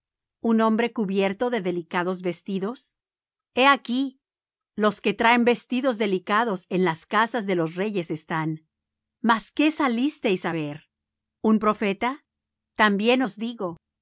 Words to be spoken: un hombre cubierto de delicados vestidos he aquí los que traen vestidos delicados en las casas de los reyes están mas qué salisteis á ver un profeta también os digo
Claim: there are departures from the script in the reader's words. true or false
false